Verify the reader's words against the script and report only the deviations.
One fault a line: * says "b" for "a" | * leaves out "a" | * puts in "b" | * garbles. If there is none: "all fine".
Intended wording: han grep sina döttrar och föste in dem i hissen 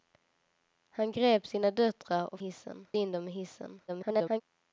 * says "hissen" for "föste"
* garbles